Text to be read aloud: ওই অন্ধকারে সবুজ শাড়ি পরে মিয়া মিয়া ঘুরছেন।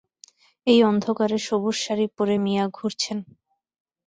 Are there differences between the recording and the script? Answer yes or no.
yes